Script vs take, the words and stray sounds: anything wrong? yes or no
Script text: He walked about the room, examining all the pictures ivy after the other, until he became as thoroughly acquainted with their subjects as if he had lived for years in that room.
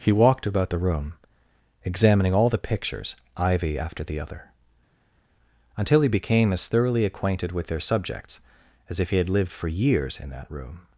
no